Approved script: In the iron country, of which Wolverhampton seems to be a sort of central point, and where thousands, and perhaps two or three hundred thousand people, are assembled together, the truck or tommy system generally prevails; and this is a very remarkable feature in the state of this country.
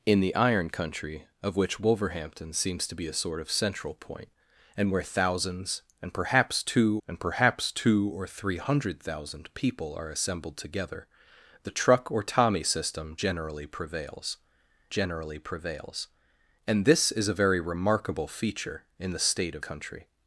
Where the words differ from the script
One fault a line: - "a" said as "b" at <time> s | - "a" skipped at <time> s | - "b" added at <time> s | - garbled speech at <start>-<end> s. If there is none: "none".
- "and perhaps two" added at 7.1 s
- "generally prevails" added at 14.9 s
- "this" skipped at 19.6 s